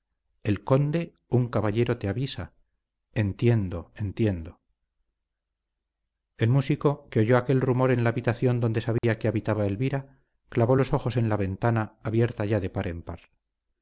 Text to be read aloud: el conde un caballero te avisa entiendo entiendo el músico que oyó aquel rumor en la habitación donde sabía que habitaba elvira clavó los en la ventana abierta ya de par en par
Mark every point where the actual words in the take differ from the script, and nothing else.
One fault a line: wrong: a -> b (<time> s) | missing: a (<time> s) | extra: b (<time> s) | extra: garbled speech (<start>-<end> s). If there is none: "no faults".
extra: ojos (10.9 s)